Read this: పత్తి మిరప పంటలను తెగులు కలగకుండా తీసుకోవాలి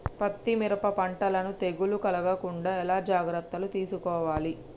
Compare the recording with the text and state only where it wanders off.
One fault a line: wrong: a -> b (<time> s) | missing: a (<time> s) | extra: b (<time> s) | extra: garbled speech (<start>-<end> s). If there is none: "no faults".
extra: ఎలా జాగ్రత్తలు (2.8 s)